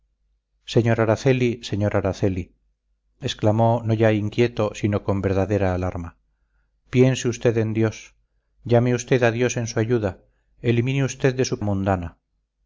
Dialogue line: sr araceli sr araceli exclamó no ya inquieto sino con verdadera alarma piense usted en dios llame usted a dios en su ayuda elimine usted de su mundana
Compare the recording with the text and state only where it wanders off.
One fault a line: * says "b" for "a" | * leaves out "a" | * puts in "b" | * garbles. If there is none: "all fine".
all fine